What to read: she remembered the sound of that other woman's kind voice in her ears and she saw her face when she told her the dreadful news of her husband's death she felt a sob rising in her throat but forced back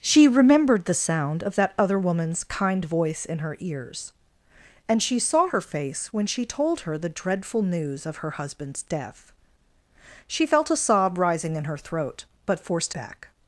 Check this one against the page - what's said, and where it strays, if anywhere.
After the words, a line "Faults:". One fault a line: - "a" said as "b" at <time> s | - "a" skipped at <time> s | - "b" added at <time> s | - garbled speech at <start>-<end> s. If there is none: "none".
she remembered the sound of that other woman's kind voice in her ears and she saw her face when she told her the dreadful news of her husband's death she felt a sob rising in her throat but forced back
Faults:
none